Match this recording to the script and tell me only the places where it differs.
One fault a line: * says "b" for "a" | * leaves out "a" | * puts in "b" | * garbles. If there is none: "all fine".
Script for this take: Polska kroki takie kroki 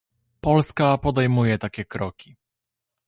* says "podejmuje" for "kroki"